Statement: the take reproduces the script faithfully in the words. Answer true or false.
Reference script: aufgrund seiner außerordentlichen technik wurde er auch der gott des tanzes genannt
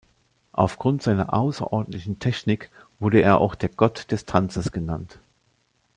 true